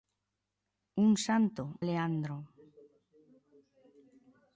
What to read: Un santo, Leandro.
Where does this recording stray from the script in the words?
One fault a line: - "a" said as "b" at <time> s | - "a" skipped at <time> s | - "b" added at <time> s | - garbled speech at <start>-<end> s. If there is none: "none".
none